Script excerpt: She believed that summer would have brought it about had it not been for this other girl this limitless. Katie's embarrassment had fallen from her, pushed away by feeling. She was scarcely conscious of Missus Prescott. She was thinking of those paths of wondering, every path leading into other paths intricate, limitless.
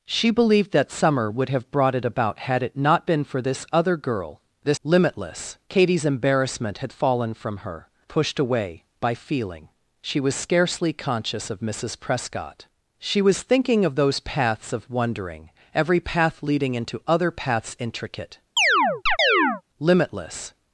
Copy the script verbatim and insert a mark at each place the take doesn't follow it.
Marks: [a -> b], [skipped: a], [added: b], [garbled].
She believed that summer would have brought it about had it not been for this other girl this limitless. Katie's embarrassment had fallen from her, pushed away by feeling. She was scarcely conscious of Missus Prescott. She was thinking of those paths of wondering, every path leading into other paths intricate, limitless.